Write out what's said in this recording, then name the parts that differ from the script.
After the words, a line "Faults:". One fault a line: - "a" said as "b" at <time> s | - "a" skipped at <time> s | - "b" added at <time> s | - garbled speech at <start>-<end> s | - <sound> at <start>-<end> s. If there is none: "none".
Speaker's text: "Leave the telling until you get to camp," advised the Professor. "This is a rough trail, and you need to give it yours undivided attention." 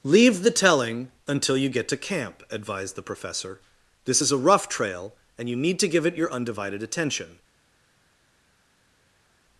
"Leave the telling until you get to camp," advised the Professor. "This is a rough trail, and you need to give it your undivided attention."
Faults:
- "yours" said as "your" at 6.2 s